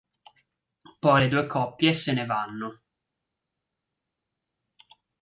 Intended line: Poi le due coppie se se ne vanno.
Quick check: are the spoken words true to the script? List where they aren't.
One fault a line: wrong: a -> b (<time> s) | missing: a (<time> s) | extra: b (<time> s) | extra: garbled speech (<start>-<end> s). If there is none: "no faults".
missing: se (2.1 s)